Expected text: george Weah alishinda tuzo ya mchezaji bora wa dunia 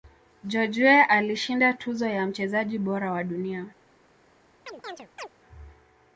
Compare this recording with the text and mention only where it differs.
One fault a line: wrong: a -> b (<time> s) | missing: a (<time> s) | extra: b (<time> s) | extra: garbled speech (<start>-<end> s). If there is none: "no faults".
no faults